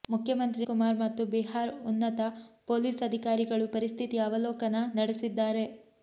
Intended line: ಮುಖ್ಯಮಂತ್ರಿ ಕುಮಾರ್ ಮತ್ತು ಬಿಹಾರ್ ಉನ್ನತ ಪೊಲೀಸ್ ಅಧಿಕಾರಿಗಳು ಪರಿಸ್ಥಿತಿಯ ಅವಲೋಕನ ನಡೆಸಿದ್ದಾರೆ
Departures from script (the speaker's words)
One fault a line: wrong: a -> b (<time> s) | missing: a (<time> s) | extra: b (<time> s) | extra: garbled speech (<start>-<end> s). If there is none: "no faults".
no faults